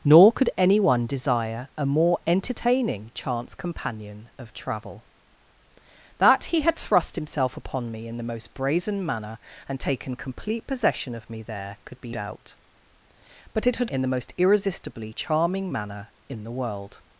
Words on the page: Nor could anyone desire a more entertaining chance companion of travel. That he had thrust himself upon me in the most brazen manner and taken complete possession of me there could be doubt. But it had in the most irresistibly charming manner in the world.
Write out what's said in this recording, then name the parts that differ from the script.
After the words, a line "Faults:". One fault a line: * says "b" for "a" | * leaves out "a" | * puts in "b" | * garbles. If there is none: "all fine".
Nor could anyone desire a more entertaining chance companion of travel. That he had thrust himself upon me in the most brazen manner and taken complete possession of me there could be doubt. But it had in the most irresistibly charming manner in the world.
Faults:
all fine